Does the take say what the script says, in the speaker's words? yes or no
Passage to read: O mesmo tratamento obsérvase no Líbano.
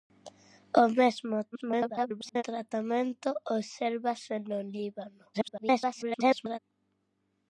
no